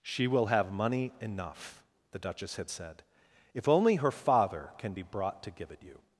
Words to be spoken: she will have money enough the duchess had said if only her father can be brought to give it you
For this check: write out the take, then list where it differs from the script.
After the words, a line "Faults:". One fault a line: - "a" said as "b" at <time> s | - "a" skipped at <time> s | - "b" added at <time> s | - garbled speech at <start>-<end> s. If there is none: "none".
she will have money enough the duchess had said if only her father can be brought to give it you
Faults:
none